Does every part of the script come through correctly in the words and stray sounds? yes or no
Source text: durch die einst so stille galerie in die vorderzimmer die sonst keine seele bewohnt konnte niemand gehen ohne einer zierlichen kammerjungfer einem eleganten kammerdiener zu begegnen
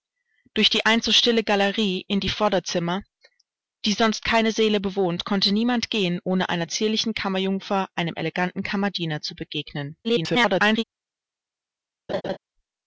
no